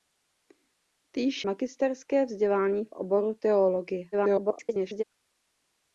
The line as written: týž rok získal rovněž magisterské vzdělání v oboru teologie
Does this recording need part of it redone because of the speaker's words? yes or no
yes